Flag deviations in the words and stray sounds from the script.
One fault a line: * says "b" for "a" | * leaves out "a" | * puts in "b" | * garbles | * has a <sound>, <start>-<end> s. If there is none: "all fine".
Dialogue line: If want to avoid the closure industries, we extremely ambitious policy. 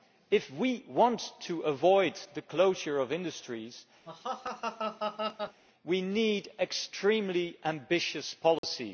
* puts in "we"
* puts in "of"
* has a laugh, 4.1-5.6 s
* puts in "need"
* has a dropout, 8.6-8.6 s